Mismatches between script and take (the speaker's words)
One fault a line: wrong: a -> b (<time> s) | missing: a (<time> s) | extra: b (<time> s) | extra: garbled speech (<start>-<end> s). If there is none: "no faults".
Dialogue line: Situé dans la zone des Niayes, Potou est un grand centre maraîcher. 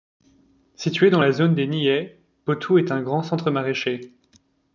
no faults